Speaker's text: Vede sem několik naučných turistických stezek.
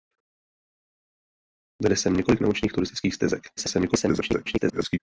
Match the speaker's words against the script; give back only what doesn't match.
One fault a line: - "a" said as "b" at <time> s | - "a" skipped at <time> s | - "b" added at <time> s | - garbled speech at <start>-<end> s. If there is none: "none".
- garbled speech at 3.6-5.0 s